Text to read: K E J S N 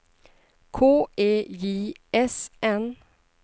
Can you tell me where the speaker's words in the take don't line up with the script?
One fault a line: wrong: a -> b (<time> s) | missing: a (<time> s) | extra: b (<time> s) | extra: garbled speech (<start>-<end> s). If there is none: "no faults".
no faults